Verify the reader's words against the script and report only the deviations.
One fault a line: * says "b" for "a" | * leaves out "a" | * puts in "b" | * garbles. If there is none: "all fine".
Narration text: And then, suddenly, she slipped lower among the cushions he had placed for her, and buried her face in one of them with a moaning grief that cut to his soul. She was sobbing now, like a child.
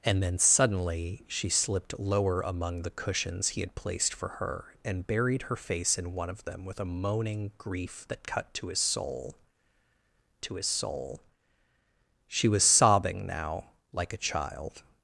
* puts in "to his soul"